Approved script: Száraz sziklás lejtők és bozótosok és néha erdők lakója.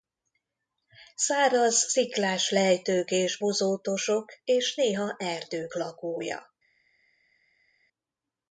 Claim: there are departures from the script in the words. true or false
false